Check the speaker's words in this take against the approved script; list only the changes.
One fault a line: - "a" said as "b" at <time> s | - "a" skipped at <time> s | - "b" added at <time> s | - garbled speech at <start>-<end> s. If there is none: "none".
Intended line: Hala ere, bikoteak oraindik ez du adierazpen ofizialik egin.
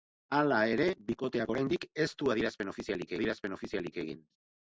- "adierazpen ofizialik" added at 3.2 s